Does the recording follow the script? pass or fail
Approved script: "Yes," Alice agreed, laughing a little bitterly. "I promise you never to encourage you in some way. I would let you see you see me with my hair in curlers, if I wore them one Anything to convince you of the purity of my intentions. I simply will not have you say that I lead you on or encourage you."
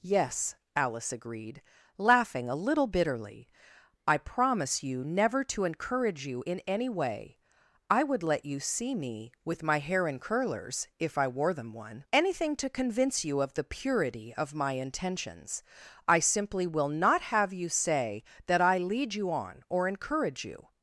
fail